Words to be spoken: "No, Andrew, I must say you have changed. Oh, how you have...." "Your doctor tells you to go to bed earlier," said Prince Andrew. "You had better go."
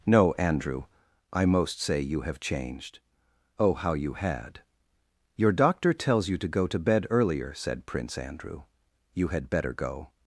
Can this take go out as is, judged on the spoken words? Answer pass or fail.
fail